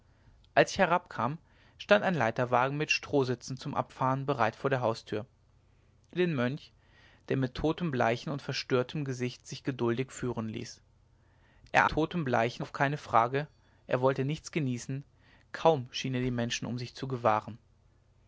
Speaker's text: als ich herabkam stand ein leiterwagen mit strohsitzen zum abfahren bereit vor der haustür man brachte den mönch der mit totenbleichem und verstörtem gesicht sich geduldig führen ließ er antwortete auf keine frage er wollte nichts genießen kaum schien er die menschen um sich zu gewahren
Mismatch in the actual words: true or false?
true